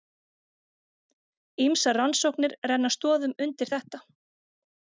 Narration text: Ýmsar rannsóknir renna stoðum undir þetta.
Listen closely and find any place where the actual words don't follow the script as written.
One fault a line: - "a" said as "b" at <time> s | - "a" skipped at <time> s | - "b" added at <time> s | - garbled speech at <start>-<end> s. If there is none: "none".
none